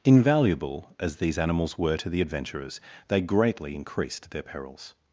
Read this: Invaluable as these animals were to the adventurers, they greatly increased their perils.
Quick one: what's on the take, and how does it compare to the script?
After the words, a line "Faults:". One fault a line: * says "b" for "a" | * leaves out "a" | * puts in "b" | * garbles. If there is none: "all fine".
Invaluable as these animals were to the adventurers, they greatly increased their perils.
Faults:
all fine